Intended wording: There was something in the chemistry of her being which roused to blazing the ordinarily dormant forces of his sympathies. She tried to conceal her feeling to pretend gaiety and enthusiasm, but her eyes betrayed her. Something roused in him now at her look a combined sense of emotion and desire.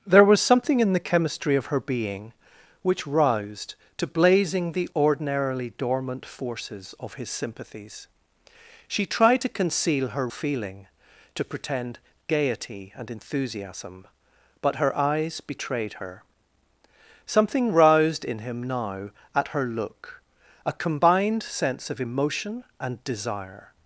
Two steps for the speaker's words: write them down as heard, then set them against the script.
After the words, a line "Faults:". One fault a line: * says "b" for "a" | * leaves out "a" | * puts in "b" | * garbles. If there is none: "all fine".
There was something in the chemistry of her being which roused to blazing the ordinarily dormant forces of his sympathies. She tried to conceal her feeling to pretend gaiety and enthusiasm, but her eyes betrayed her. Something roused in him now at her look a combined sense of emotion and desire.
Faults:
all fine